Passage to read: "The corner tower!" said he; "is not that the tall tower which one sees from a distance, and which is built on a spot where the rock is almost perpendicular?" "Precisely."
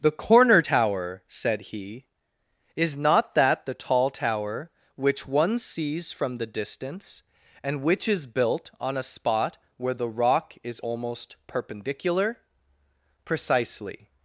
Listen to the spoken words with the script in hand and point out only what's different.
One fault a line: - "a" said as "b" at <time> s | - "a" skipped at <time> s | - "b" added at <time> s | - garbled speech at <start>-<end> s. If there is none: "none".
- "a" said as "the" at 6.4 s